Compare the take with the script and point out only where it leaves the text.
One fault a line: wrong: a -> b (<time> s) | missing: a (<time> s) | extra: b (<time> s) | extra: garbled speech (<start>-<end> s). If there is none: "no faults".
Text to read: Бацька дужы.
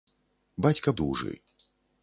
no faults